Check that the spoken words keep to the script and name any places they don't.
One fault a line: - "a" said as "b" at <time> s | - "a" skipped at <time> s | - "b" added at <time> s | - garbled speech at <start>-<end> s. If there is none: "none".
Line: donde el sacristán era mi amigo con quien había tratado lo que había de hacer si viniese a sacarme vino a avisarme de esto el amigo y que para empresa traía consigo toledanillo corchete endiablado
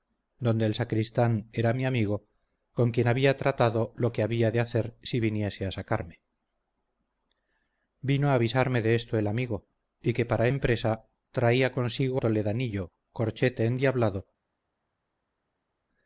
none